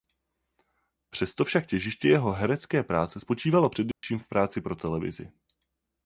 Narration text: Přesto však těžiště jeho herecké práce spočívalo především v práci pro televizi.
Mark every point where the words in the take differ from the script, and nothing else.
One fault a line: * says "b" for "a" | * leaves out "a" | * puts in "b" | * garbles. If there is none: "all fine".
all fine